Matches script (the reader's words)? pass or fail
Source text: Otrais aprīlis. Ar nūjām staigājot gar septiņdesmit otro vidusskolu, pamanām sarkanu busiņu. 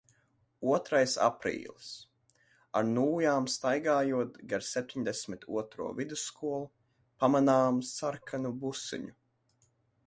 pass